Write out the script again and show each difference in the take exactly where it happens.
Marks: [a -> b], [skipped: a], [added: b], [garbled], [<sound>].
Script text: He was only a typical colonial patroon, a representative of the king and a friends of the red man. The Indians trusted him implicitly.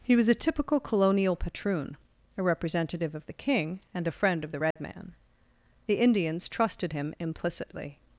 He was [skipped: only] a typical colonial patroon, a representative of the king and a [friends -> friend] of the red [dropout] man. The Indians trusted him implicitly.